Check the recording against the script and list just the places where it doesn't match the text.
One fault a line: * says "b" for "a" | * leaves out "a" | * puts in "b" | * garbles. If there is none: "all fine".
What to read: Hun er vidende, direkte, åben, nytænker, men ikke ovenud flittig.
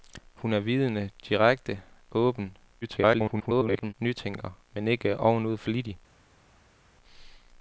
* garbles